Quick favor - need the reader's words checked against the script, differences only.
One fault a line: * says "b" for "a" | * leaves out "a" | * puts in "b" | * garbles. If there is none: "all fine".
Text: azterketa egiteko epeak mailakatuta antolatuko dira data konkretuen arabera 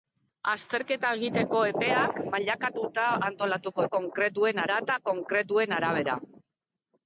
* says "konkretuen" for "dira"